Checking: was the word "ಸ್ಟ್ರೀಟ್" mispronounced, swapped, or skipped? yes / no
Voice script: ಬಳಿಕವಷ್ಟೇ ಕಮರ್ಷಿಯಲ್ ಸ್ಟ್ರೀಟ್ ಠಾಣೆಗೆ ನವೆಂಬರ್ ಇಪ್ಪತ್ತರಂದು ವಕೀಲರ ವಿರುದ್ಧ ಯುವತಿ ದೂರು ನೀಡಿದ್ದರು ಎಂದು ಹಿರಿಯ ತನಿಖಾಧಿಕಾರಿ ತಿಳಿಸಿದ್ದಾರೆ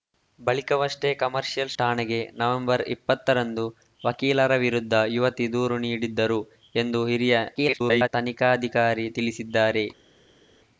yes